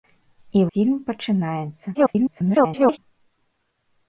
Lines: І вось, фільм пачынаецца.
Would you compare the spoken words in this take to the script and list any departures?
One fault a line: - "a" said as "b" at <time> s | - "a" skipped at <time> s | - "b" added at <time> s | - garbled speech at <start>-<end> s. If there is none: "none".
- "вось" skipped at 0.6 s
- garbled speech at 1.9-3.0 s